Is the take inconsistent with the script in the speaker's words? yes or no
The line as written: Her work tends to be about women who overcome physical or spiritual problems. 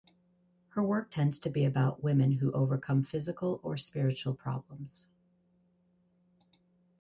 no